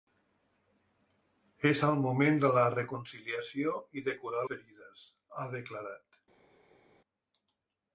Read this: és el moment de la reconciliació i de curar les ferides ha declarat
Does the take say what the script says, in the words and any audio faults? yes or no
no